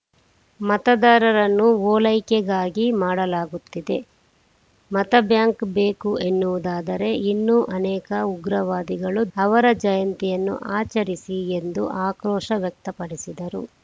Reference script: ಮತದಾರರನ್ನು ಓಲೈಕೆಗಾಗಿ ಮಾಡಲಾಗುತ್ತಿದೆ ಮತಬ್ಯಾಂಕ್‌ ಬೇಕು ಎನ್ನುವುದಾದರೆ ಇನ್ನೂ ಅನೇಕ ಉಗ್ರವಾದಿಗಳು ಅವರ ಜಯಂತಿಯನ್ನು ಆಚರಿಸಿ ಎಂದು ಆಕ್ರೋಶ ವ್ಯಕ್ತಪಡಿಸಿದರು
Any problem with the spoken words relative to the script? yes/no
no